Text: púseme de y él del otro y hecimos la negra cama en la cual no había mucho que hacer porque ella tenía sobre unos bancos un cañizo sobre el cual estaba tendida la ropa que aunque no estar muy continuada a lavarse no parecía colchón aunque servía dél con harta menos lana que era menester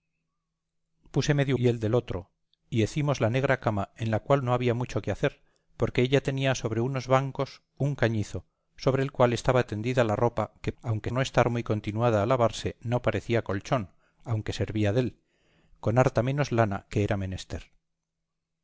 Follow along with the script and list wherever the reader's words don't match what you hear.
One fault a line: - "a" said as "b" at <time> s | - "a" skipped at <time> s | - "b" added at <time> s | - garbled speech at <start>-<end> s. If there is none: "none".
none